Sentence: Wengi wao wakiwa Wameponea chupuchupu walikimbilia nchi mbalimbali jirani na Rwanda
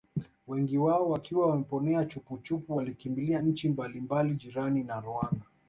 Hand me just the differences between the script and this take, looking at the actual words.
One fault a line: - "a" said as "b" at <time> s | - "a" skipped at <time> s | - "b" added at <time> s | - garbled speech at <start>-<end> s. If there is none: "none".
none